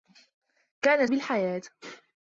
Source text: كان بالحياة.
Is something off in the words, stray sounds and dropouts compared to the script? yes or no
no